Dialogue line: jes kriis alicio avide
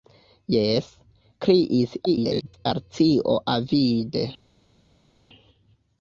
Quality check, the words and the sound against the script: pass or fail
fail